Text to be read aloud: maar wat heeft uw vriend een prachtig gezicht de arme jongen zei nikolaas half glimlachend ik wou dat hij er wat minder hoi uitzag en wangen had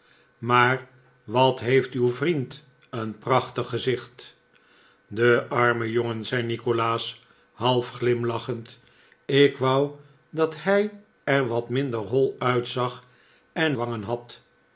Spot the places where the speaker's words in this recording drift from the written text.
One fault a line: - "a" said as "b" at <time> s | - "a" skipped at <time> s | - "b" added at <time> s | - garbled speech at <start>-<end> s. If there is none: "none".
none